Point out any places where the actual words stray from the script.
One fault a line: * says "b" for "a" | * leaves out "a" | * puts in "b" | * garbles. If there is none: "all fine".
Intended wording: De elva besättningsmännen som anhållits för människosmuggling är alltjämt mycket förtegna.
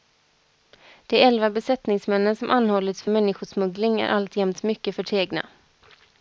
all fine